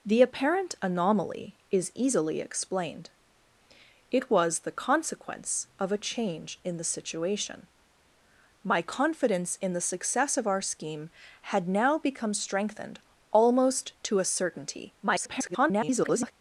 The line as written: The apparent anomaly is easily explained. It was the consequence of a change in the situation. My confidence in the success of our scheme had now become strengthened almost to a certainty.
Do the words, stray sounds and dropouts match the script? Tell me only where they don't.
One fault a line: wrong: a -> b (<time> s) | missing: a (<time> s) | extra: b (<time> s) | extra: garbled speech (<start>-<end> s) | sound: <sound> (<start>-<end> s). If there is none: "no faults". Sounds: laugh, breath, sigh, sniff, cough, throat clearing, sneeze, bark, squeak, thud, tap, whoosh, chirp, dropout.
extra: garbled speech (15.0-16.3 s)